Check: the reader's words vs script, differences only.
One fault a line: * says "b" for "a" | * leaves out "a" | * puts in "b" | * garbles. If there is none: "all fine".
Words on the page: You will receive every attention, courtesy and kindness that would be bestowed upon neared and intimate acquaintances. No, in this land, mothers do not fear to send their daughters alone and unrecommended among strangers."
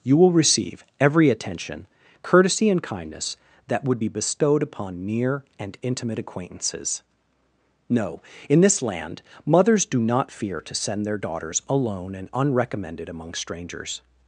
* says "near" for "neared"